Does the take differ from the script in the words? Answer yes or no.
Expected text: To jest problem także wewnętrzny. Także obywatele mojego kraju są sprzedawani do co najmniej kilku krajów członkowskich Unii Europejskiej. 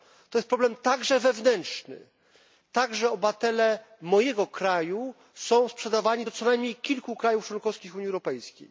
no